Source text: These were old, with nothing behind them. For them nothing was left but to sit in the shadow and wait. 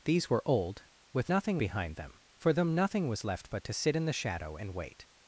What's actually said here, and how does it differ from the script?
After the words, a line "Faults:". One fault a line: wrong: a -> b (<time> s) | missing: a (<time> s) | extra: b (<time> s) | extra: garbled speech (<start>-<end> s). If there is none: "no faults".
These were old, with nothing behind them. For them nothing was left but to sit in the shadow and wait.
Faults:
no faults